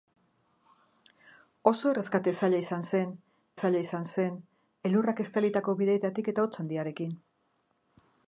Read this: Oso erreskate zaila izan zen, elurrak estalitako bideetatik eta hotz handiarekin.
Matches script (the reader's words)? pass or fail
fail